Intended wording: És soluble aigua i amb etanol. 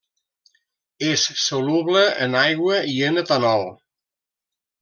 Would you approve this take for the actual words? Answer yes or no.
no